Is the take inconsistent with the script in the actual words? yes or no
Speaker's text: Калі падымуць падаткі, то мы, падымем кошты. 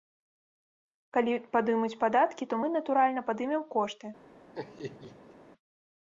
yes